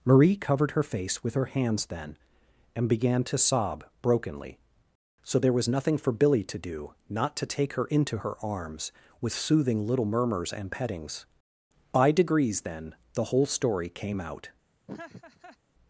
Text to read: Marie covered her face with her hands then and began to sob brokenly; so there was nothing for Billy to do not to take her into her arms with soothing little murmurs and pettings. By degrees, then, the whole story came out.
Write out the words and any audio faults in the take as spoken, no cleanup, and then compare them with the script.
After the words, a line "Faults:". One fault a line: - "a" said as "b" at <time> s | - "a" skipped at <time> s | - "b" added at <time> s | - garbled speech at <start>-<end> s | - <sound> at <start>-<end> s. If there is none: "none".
Marie covered her face with her hands then and began to sob brokenly; so there was nothing for Billy to do not to take her into her arms with soothing little murmurs and pettings. By degrees, then, the whole story came out.
Faults:
- laugh at 14.9-15.6 s